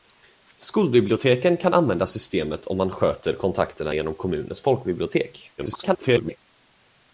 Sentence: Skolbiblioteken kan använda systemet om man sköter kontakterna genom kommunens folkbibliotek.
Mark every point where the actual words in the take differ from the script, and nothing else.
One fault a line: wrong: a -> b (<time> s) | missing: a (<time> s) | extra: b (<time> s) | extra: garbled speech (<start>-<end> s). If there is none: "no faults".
extra: garbled speech (5.6-6.4 s)